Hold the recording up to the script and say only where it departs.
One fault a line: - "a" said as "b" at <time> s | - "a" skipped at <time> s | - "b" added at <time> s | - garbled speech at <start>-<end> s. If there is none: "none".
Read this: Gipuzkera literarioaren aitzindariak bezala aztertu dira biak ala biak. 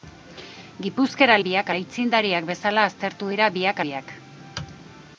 - "literarioaren" said as "biak" at 1.5 s
- "ala" skipped at 3.8 s